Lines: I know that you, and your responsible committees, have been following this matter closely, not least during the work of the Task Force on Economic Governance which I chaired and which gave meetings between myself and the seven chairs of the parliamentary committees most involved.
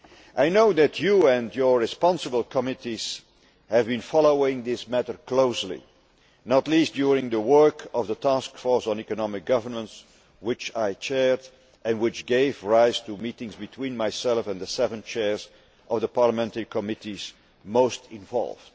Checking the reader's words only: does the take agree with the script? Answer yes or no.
no